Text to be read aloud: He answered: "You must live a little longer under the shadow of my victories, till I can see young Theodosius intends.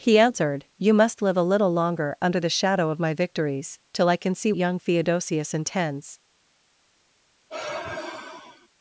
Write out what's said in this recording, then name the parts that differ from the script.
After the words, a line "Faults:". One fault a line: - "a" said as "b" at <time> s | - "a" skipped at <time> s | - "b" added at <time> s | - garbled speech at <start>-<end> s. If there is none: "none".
He answered: "You must live a little longer under the shadow of my victories, till I can see young Theodosius intends.
Faults:
none